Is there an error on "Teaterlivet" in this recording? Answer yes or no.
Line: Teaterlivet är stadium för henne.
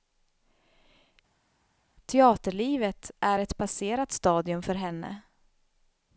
no